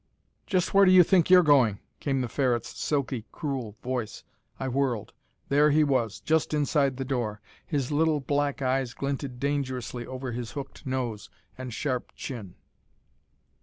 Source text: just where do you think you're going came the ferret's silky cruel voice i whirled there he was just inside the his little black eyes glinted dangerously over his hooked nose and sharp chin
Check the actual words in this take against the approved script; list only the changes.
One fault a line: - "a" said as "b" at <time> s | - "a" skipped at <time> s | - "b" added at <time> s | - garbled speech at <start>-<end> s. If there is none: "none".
- "door" added at 7.0 s